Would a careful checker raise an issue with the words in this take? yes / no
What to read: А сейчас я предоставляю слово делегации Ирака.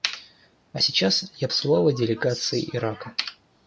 yes